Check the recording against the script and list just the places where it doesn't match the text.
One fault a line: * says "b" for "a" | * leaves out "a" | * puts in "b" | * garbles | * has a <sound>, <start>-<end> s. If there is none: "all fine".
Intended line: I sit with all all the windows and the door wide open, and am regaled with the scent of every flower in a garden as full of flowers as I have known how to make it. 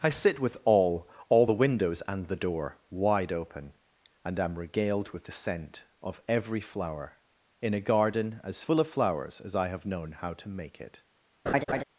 * has a laugh, 11.5-11.8 s